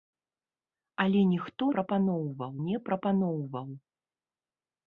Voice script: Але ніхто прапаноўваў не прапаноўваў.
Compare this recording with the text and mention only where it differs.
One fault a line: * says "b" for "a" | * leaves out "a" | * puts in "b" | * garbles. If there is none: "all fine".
all fine